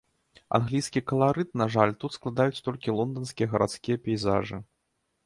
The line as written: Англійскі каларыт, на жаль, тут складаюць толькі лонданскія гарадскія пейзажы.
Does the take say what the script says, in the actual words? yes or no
yes